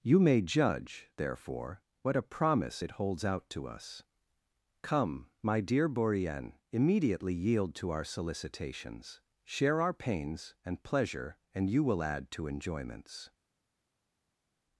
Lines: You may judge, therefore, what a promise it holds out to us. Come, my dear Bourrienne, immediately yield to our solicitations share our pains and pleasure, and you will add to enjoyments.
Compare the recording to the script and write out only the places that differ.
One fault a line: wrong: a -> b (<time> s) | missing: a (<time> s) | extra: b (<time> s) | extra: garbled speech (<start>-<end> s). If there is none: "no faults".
no faults